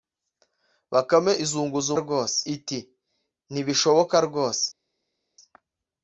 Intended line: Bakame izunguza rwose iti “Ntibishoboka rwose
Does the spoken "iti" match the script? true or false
true